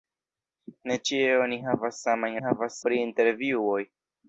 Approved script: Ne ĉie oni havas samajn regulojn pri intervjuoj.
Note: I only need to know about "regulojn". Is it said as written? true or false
false